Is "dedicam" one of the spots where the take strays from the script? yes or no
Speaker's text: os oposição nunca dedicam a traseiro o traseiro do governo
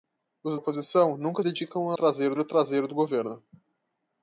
no